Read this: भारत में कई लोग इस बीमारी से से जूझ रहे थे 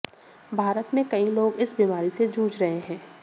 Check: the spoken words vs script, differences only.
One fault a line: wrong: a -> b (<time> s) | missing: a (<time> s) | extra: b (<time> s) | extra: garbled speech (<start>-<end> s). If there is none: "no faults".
missing: से (2.3 s)
wrong: थे -> हैं (2.8 s)